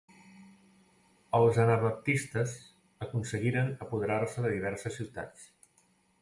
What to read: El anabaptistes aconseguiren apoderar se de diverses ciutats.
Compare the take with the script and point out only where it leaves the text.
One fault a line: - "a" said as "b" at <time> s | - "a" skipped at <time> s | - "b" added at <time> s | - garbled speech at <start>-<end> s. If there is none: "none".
- "El" said as "Els" at 1.4 s